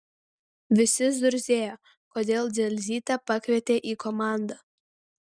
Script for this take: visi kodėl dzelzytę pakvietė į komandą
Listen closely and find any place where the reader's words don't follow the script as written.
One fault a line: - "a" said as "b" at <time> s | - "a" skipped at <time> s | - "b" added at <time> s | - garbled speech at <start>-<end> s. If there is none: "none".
- "zurzėjo" added at 1.2 s